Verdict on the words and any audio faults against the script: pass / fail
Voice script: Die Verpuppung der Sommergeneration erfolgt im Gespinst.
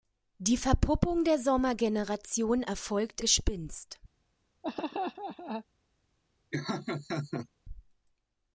fail